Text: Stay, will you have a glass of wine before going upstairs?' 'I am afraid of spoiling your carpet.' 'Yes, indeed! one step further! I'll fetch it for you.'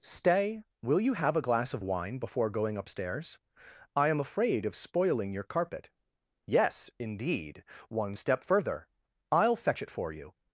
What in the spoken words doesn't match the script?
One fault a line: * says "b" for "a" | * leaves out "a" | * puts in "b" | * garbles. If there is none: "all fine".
all fine